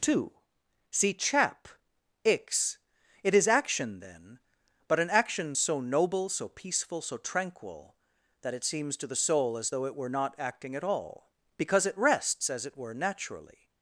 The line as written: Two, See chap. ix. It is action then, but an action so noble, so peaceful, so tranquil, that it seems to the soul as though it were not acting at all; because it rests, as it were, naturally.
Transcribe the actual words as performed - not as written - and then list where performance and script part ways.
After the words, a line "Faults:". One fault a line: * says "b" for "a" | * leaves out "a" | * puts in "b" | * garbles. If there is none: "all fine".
Two, See chap. ix. It is action then, but an action so noble, so peaceful, so tranquil, that it seems to the soul as though it were not acting at all; because it rests, as it were, naturally.
Faults:
all fine